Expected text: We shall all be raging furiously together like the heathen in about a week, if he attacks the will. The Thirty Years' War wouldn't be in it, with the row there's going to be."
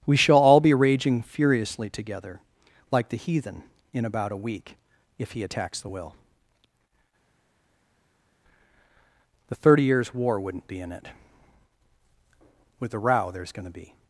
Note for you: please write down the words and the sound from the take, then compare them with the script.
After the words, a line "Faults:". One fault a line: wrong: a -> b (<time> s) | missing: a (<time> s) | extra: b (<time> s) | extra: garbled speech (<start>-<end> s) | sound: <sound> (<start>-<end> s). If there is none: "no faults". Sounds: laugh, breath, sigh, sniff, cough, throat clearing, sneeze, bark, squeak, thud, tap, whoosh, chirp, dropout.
We shall all be raging furiously together like the heathen in about a week, if he attacks the will. The Thirty Years' War wouldn't be in it, with the row there's going to be."
Faults:
no faults